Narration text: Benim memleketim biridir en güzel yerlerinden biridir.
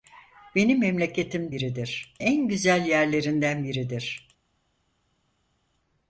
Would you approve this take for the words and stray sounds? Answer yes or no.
yes